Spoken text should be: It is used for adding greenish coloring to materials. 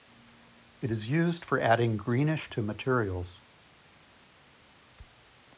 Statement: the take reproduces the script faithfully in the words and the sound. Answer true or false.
false